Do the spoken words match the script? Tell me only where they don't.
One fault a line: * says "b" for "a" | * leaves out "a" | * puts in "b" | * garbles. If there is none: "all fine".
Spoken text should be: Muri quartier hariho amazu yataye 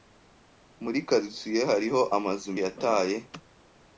all fine